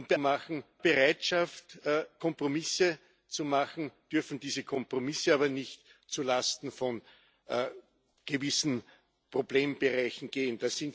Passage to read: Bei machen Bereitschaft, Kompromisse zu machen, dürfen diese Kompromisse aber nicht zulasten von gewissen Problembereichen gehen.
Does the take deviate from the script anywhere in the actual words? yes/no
no